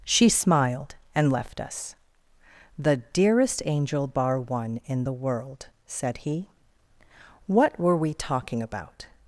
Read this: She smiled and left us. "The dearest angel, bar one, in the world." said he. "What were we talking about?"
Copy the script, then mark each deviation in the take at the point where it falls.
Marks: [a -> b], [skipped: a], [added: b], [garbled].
She smiled and left us. "The dearest angel, bar one, in the world." said he. "What were we talking about?"